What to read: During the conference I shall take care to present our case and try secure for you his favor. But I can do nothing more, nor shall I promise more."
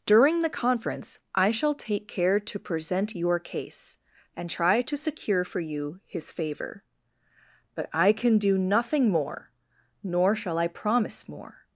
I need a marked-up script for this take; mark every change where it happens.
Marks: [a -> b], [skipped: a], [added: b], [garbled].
During the conference I shall take care to present [our -> your] case and try [added: to] secure for you his favor. But I can do nothing more, nor shall I promise more."